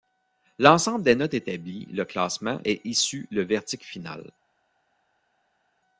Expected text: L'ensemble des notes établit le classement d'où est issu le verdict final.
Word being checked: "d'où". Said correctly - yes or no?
no